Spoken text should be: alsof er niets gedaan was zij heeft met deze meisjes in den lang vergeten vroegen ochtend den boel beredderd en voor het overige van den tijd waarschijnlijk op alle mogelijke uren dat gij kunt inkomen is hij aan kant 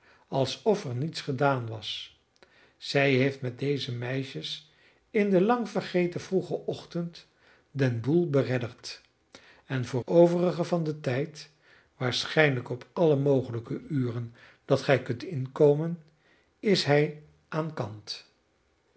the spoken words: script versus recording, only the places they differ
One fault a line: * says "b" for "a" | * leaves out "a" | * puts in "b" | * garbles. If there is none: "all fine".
* leaves out "het"